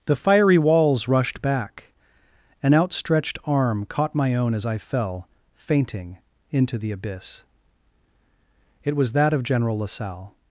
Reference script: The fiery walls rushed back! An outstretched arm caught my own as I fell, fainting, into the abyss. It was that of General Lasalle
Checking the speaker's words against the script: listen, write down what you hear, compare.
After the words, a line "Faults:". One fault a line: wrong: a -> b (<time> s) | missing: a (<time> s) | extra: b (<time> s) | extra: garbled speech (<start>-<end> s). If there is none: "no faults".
The fiery walls rushed back! An outstretched arm caught my own as I fell, fainting, into the abyss. It was that of General Lasalle
Faults:
no faults